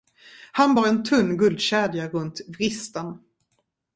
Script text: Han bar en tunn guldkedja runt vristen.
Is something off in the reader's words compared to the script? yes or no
no